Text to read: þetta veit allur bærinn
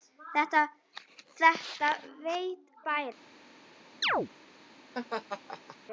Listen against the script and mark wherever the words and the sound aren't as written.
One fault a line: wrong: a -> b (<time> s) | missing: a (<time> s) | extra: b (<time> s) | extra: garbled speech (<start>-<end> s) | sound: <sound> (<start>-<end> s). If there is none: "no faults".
missing: allur (2.8 s)
sound: chirp (4.0-4.3 s)
sound: laugh (4.9-5.8 s)